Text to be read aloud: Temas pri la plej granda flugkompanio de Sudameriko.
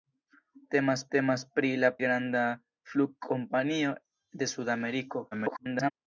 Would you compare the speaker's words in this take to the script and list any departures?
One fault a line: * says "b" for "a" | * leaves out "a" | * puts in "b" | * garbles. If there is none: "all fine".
* puts in "temas"
* leaves out "plej"
* garbles